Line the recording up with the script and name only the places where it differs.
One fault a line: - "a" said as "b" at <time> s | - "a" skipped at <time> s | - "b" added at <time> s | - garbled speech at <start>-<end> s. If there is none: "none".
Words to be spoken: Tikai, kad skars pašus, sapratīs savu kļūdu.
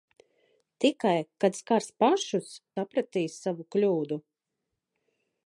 none